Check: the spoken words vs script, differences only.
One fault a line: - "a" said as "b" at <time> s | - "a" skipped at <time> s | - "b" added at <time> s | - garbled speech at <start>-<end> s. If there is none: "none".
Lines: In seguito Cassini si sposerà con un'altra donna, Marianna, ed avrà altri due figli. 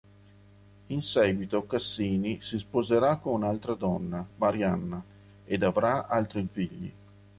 - "due" skipped at 6.5 s